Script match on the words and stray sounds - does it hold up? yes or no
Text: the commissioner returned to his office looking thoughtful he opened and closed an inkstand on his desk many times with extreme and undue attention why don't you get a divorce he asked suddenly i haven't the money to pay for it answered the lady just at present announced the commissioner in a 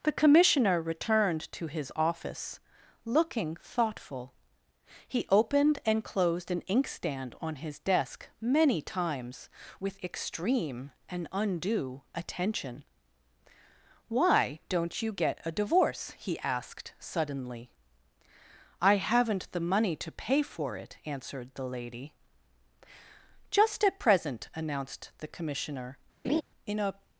no